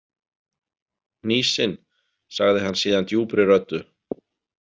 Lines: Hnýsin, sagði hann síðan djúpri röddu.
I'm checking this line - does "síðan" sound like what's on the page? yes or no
yes